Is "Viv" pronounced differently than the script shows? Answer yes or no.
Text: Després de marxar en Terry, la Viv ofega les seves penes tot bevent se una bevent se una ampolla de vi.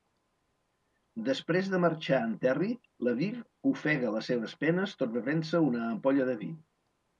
no